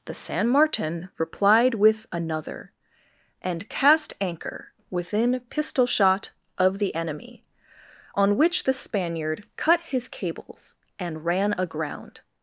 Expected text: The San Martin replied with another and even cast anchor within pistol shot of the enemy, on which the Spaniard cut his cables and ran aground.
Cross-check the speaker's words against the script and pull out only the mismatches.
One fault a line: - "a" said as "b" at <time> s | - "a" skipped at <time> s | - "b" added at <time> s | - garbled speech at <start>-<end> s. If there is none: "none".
- "even" skipped at 3.7 s